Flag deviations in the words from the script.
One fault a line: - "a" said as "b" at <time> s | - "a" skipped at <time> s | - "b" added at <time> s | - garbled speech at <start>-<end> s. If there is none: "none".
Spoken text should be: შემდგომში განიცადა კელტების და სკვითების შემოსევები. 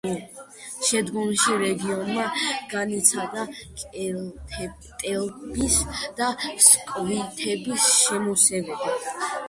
- "რეგიონმა" added at 1.6 s